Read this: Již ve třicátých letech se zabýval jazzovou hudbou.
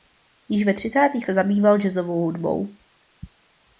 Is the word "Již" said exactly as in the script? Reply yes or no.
yes